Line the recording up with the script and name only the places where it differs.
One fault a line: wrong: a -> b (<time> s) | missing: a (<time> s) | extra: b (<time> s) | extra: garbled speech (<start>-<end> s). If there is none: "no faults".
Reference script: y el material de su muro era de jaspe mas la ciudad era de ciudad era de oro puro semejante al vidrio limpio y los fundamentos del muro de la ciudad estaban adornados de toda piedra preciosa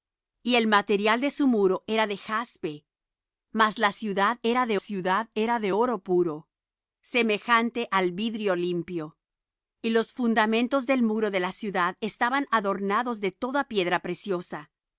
no faults